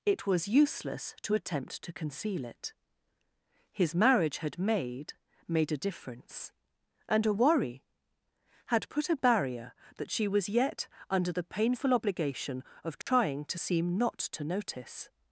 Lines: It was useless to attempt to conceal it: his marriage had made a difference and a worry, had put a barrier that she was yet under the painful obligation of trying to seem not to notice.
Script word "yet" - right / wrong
right